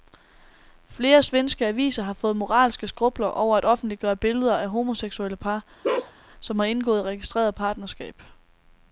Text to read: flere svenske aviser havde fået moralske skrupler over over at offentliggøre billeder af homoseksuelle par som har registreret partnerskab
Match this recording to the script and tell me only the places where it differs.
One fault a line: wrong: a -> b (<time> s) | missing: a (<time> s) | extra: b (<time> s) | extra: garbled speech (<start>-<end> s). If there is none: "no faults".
wrong: havde -> har (2.0 s)
missing: over (3.6 s)
extra: indgået (6.7 s)